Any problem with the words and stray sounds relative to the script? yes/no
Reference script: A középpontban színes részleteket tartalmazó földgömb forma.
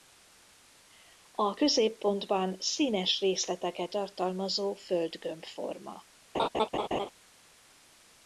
yes